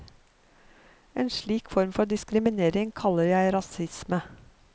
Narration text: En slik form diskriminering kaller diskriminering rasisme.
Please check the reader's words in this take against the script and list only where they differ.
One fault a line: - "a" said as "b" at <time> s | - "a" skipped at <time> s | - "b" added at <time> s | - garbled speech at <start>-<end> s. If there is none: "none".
- "for" added at 1.9 s
- "diskriminering" said as "jeg" at 3.2 s